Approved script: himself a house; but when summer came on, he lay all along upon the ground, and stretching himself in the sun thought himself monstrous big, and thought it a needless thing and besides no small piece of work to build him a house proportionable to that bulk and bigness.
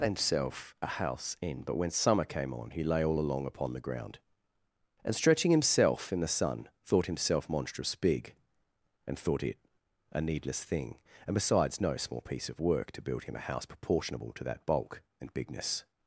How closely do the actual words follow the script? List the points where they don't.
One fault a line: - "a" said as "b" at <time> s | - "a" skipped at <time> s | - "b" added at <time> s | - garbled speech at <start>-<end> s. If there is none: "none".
- "in" added at 1.4 s